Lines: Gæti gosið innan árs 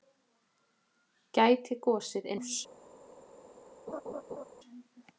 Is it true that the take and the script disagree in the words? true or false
true